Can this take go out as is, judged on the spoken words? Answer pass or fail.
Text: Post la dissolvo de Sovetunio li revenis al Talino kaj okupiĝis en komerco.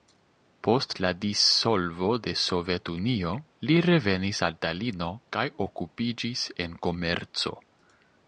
pass